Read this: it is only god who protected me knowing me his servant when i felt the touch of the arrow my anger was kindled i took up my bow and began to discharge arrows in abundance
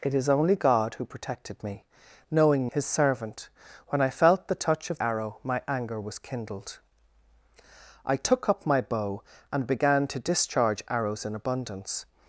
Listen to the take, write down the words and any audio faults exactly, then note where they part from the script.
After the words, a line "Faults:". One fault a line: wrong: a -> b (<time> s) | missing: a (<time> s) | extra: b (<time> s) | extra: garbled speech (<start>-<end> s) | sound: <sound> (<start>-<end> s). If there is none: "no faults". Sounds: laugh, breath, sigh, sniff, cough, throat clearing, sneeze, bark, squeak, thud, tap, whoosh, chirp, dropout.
it is only god who protected me knowing his servant when i felt the touch of arrow my anger was kindled i took up my bow and began to discharge arrows in abundance
Faults:
missing: me (2.7 s)
missing: the (5.0 s)